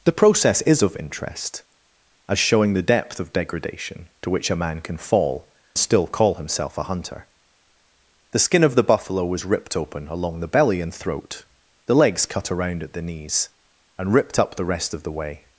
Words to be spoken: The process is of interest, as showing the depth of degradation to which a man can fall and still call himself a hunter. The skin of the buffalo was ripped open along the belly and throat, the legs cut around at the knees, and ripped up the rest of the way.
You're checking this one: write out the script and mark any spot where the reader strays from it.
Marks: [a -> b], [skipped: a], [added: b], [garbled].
The process is of interest, as showing the depth of degradation to which a man can fall [skipped: and] still call himself a hunter. The skin of the buffalo was ripped open along the belly and throat, the legs cut around at the knees, and ripped up the rest of the way.